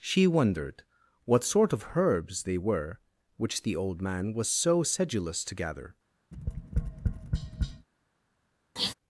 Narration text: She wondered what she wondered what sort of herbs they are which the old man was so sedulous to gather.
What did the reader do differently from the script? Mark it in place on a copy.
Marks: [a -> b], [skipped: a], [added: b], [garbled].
She wondered what [skipped: she wondered what] sort of herbs they [are -> were] which the old man was so sedulous to gather.